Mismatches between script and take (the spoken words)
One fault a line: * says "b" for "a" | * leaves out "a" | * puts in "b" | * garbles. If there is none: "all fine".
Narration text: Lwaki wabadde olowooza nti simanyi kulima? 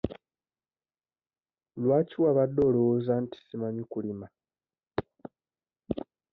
all fine